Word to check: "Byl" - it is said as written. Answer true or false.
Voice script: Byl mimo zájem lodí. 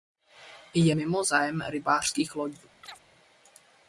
false